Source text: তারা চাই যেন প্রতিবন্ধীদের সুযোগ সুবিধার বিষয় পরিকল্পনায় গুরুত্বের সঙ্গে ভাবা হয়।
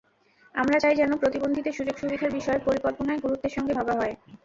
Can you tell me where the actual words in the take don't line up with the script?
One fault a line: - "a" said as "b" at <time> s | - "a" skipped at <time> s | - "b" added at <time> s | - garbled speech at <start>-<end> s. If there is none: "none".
- "তারা" said as "আমরা" at 0.6 s